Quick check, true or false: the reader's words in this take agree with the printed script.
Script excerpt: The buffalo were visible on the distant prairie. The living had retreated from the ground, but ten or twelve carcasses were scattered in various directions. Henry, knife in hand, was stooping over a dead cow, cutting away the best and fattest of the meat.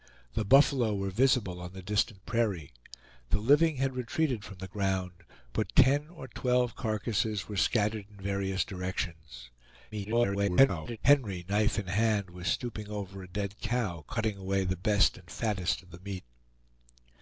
false